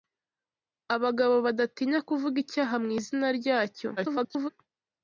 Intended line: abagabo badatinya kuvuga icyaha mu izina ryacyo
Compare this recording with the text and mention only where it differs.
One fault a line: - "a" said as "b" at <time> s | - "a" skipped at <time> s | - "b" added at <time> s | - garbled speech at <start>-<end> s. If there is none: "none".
- garbled speech at 4.0-4.5 s